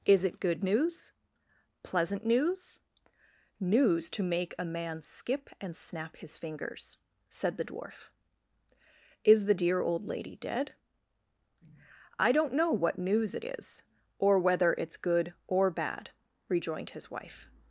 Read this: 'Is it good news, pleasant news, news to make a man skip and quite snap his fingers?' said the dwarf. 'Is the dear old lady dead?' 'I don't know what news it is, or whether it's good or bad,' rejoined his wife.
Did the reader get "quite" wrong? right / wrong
wrong